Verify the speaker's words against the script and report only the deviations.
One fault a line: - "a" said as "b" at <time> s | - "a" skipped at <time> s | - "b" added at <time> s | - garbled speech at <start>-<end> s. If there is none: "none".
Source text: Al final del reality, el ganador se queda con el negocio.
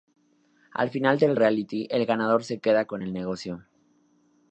none